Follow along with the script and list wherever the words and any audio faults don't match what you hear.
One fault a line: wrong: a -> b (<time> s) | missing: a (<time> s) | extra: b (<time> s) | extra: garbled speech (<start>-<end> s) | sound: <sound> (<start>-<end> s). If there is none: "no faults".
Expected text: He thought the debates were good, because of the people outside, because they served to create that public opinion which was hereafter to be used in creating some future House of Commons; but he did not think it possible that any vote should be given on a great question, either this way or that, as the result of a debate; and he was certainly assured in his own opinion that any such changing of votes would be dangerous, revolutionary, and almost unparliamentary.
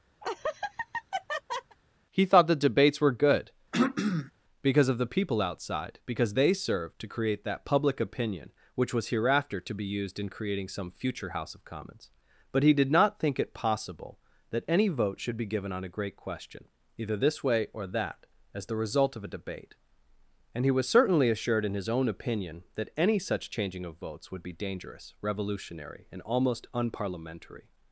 sound: laugh (0.2-1.8 s)
sound: throat clearing (3.7-4.3 s)